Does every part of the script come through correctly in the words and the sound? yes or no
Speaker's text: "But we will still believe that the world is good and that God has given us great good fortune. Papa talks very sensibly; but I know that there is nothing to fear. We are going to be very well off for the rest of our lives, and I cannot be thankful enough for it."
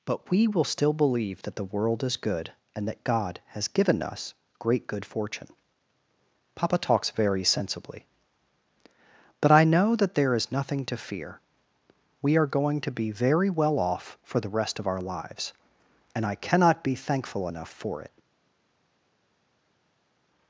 yes